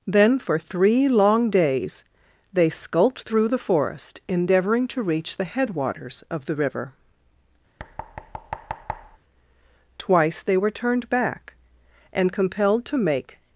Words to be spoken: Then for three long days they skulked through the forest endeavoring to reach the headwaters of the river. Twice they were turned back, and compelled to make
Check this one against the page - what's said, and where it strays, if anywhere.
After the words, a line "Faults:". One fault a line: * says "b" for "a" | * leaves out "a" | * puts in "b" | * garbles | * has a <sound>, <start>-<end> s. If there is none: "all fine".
Then for three long days they skulked through the forest endeavoring to reach the headwaters of the river. Twice they were turned back, and compelled to make
Faults:
* has a thud, 7.8-9.2 s